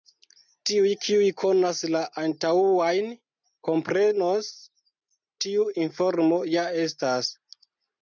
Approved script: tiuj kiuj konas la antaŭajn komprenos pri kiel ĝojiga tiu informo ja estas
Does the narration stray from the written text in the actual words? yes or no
yes